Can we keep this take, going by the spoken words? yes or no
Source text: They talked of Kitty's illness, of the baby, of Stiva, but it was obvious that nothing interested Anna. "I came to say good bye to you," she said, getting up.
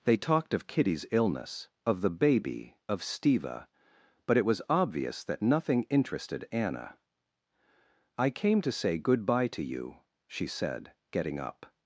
yes